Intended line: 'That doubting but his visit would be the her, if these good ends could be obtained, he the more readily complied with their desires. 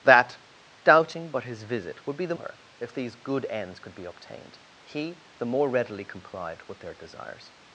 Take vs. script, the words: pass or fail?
pass